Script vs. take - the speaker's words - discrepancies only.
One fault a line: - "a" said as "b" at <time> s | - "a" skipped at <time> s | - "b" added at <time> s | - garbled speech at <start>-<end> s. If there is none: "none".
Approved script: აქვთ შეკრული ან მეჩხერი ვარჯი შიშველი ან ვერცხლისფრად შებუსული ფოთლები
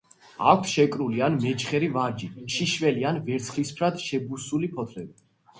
none